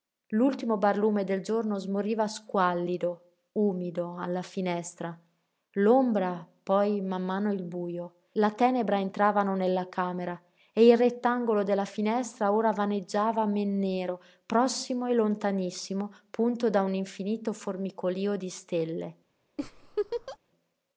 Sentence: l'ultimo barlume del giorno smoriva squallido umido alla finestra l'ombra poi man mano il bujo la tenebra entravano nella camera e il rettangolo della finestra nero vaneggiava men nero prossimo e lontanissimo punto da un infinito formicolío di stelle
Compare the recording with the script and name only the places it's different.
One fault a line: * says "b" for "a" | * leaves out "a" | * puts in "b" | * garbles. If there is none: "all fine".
* says "ora" for "nero"